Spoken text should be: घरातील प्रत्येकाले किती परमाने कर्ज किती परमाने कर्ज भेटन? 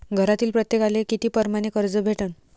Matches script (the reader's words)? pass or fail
fail